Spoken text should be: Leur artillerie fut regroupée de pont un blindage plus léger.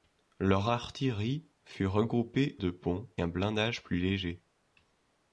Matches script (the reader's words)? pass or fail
pass